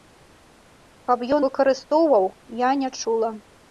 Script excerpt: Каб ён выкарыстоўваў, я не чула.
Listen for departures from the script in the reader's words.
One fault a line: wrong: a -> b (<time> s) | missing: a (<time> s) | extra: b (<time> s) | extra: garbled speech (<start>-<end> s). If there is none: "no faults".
no faults